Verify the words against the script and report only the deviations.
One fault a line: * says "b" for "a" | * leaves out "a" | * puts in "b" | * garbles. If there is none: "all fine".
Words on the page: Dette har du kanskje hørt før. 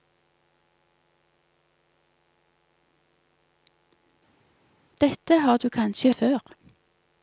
* leaves out "hørt"